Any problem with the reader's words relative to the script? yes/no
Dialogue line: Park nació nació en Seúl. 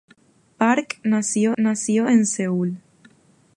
no